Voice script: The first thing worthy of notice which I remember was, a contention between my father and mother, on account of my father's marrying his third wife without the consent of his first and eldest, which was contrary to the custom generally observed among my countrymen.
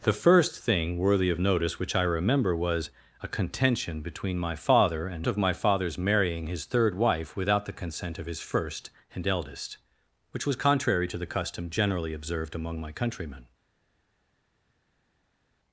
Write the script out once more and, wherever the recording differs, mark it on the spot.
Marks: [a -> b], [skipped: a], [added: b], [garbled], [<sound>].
The first thing worthy of notice which I remember was, a contention between my father and [skipped: mother, on account] of my father's marrying his third wife without the consent of his first and eldest, which was contrary to the custom generally observed among my countrymen.